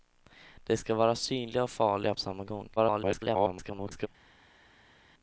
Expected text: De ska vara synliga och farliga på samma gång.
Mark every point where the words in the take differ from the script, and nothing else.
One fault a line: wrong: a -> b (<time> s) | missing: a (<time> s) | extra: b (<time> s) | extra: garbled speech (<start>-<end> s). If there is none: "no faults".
missing: på (2.1 s)
extra: garbled speech (2.8-4.1 s)